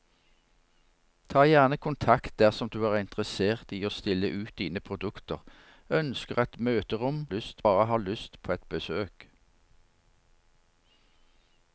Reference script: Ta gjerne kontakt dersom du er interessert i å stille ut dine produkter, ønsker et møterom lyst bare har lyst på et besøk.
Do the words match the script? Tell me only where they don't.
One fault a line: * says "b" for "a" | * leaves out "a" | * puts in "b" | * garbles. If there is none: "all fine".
all fine